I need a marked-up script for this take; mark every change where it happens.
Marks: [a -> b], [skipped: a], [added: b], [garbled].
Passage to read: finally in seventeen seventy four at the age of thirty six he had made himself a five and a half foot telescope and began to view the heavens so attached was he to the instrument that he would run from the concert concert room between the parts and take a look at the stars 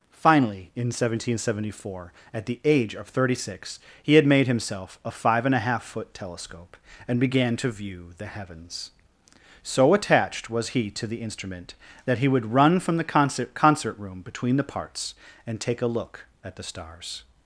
finally in seventeen seventy four at the age of thirty six he had made himself a five and a half foot telescope and began to view the heavens so attached was he to the instrument that he would run from the concert concert room between the parts and take a look at the stars